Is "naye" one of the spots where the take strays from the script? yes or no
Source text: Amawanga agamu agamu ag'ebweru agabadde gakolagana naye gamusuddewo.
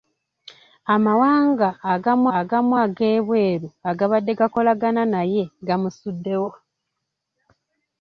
no